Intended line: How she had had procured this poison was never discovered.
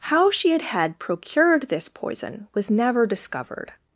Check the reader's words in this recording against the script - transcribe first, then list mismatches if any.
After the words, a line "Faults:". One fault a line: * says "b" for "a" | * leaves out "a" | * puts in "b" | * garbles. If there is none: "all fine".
How she had had procured this poison was never discovered.
Faults:
all fine